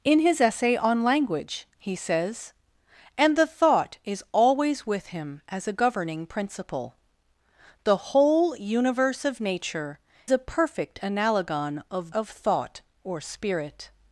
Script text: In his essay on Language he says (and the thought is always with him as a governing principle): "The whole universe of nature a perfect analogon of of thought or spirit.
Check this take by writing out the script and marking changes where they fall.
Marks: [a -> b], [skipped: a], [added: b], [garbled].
In his essay on Language he says (and the thought is always with him as a governing principle): "The whole universe of nature a perfect analogon of of thought or spirit.